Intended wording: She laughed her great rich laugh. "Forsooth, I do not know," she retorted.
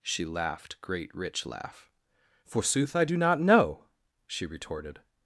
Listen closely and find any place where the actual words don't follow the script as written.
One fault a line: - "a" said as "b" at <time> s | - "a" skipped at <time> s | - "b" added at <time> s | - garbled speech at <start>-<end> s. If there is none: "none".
- "her" skipped at 0.8 s